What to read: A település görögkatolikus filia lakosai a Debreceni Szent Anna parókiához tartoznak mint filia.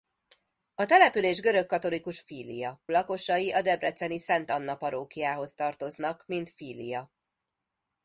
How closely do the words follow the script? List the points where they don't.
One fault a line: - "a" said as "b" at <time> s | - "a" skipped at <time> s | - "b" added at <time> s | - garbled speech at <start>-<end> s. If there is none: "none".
none